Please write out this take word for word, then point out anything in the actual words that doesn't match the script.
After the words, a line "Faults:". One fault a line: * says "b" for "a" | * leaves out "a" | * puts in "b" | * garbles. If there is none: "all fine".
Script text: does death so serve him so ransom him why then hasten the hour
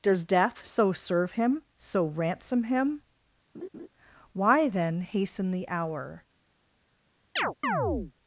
does death so serve him so ransom him why then hasten the hour
Faults:
all fine